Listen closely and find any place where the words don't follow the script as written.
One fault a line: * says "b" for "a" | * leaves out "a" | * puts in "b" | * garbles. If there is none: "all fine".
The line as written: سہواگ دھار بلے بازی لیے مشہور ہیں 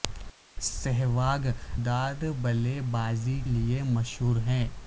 all fine